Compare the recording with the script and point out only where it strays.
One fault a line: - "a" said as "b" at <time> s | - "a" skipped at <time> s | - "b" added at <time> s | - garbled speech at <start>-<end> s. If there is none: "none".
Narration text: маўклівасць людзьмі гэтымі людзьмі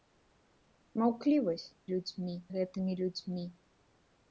none